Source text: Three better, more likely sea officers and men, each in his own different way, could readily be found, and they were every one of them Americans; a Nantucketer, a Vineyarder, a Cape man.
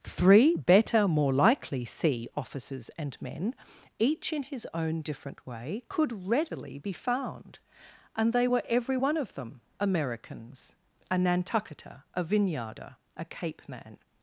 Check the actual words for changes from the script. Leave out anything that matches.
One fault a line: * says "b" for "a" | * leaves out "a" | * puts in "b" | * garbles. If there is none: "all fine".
all fine